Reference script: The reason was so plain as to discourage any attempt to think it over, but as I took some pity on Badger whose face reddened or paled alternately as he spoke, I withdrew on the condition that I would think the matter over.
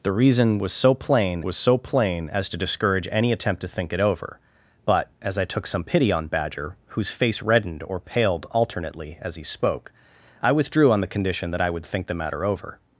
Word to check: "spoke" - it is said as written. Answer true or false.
true